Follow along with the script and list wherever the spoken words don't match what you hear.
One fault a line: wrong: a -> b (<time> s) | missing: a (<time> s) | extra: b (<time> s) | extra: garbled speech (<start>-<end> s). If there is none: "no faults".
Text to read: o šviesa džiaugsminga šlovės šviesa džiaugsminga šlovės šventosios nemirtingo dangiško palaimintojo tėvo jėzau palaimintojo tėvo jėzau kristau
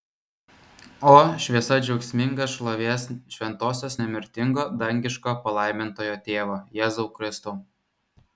missing: šviesa džiaugsminga šlovės (3.0 s)
missing: palaimintojo tėvo jėzau (7.1 s)